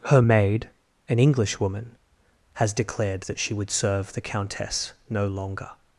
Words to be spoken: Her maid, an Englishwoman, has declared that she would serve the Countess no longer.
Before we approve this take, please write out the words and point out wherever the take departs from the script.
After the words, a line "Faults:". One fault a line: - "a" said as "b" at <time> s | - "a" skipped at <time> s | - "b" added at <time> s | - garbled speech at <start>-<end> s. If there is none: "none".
Her maid, an Englishwoman, has declared that she would serve the Countess no longer.
Faults:
none